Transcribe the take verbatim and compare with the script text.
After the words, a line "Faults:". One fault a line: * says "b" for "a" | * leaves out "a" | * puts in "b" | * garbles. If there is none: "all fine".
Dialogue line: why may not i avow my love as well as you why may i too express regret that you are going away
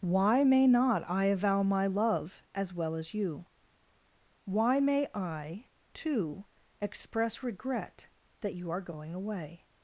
why may not i avow my love as well as you why may i too express regret that you are going away
Faults:
all fine